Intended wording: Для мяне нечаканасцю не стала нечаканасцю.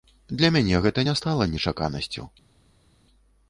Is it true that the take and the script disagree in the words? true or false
true